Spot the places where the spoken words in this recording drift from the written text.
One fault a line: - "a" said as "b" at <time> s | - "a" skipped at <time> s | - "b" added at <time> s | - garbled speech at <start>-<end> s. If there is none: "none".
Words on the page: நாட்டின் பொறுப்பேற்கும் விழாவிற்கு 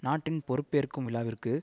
none